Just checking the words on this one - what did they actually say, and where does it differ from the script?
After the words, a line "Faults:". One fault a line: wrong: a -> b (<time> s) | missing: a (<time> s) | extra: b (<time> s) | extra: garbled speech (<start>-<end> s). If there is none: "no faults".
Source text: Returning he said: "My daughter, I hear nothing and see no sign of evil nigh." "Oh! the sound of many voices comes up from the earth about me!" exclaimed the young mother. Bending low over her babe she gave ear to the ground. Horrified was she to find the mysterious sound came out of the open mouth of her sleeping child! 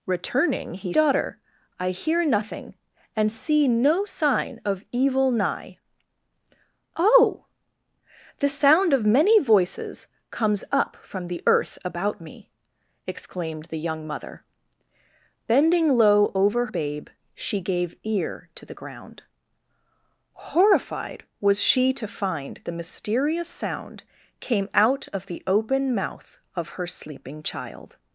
Returning he daughter, I hear nothing and see no sign of evil nigh." "Oh! the sound of many voices comes up from the earth about me!" exclaimed the young mother. Bending low over babe she gave ear to the ground. Horrified was she to find the mysterious sound came out of the open mouth of her sleeping child!
Faults:
missing: said My (0.9 s)
missing: her (16.7 s)